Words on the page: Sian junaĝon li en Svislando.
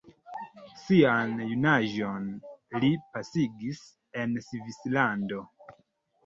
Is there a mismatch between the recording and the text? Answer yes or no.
yes